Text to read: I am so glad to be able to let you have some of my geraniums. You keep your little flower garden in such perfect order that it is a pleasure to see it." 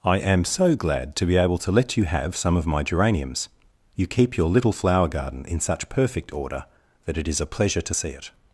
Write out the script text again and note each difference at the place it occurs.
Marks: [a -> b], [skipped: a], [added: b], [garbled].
I am so glad to be able to let you have some of my geraniums. You keep your little flower garden in such perfect order that it is a pleasure to see it."